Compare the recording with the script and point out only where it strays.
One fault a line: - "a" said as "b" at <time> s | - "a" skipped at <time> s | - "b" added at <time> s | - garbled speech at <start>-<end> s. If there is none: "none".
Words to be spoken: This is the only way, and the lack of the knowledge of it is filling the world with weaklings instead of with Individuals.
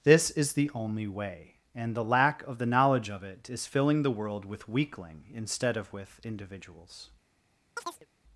- "weaklings" said as "weakling" at 4.7 s